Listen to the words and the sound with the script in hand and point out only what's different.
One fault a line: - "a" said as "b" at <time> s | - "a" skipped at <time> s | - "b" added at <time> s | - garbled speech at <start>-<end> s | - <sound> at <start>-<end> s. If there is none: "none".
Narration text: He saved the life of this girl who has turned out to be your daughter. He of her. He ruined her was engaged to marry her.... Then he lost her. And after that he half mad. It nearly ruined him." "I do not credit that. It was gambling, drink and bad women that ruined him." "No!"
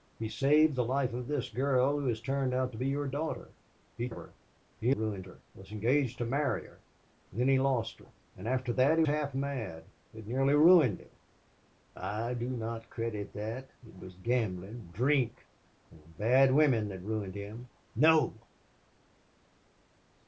none